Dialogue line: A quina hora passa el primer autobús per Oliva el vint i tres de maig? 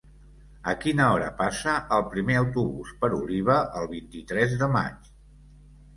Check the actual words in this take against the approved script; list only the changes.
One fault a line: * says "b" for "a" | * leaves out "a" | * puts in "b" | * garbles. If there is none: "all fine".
all fine